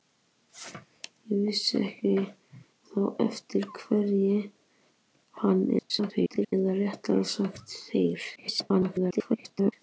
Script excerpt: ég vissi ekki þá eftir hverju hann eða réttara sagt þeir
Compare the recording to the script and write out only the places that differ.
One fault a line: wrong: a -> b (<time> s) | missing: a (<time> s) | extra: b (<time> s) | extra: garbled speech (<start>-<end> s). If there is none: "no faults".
extra: garbled speech (5.8-6.5 s)
extra: garbled speech (8.4-9.7 s)